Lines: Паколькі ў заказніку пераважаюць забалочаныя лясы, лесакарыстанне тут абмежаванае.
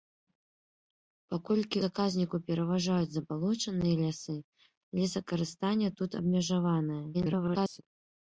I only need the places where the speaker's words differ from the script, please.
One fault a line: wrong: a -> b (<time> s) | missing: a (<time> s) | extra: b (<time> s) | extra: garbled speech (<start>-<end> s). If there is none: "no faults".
missing: ў (1.8 s)
extra: garbled speech (7.1-7.8 s)